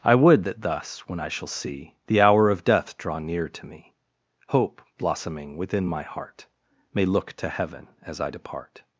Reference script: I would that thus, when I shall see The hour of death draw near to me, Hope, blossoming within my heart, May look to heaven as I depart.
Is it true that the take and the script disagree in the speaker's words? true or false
false